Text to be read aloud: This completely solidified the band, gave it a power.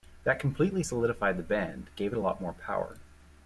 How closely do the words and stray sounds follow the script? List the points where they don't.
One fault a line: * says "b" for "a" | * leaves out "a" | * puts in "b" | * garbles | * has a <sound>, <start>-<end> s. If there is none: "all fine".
* says "That" for "This"
* puts in "lot more"